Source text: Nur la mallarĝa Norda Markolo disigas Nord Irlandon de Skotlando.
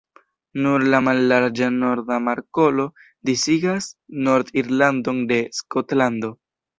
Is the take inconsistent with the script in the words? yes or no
no